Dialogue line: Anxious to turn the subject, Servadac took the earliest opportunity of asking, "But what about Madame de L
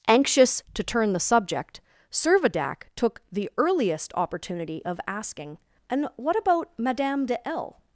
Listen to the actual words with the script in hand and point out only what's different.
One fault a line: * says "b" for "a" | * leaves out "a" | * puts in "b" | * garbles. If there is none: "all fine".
* says "And" for "But"